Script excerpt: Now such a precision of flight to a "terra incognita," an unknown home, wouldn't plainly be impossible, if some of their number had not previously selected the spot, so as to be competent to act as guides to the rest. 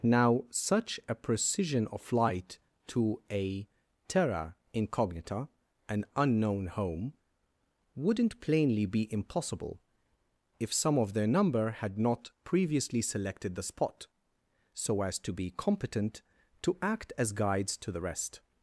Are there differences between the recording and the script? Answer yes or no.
no